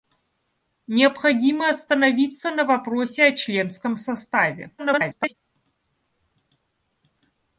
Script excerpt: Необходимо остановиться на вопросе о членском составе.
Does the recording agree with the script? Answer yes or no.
no